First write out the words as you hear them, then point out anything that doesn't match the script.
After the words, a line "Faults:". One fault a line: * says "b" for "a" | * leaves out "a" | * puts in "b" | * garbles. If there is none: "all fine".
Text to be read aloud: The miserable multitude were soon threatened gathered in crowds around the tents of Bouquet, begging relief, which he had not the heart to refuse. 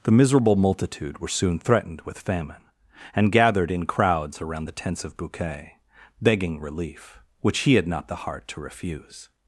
The miserable multitude were soon threatened with famine, and gathered in crowds around the tents of Bouquet, begging relief, which he had not the heart to refuse.
Faults:
* puts in "with famine and"